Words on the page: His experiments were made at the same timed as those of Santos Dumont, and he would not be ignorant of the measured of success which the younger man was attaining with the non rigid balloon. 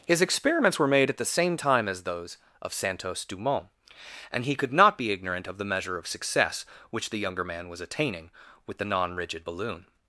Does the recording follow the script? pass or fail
fail